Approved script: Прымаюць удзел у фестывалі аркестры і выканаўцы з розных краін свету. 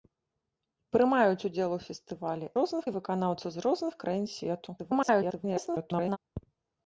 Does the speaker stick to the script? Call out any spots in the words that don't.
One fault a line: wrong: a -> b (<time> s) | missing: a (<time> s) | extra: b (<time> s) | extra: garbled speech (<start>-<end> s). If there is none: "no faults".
wrong: аркестры -> розных (2.6 s)
extra: garbled speech (4.8-6.2 s)